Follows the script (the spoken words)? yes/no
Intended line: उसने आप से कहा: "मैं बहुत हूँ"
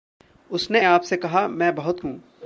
yes